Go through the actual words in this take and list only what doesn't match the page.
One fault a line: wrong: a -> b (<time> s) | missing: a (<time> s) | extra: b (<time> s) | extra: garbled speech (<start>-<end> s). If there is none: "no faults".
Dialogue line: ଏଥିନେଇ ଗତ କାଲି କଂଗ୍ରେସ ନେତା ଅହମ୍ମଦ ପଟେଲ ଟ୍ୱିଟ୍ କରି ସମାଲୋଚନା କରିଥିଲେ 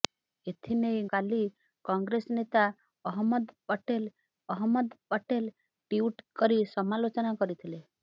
missing: ଗତ (1.0 s)
extra: ଅହମ୍ମଦ ପଟେଲ (4.5 s)